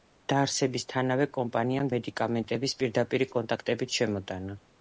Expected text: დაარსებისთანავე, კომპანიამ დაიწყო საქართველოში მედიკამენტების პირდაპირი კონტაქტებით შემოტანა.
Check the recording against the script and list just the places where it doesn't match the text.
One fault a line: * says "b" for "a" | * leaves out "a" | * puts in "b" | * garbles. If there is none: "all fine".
* leaves out "დაიწყო საქართველოში"